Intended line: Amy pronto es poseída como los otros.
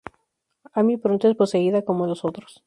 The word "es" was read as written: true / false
true